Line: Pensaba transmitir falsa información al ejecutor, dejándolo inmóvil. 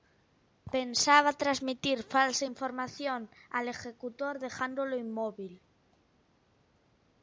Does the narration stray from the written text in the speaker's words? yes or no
no